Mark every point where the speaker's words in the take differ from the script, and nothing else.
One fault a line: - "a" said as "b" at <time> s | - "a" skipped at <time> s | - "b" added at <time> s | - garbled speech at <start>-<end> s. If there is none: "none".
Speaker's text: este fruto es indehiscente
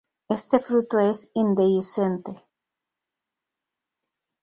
none